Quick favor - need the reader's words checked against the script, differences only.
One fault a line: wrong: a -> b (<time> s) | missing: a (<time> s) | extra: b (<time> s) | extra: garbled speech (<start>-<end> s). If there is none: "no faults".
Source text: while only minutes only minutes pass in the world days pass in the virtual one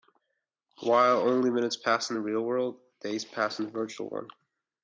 missing: only minutes (1.8 s)
extra: real (2.2 s)